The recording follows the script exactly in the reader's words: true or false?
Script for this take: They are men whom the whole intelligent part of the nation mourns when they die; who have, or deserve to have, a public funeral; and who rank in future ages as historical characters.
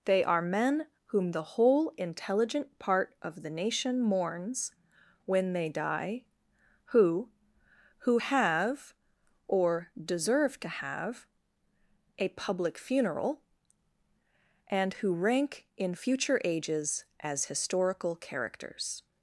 false